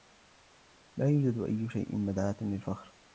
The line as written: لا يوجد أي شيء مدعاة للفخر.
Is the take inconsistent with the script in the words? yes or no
no